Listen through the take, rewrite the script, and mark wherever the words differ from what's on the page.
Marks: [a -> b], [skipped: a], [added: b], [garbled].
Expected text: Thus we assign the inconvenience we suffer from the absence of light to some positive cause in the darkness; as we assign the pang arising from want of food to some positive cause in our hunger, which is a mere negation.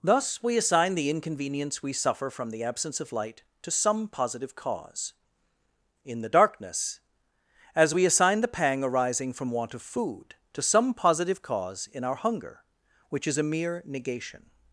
Thus we assign the inconvenience we suffer from the absence of light to some positive cause in the darkness; as we assign the pang arising from want of food to some positive cause in our hunger, which is a mere negation.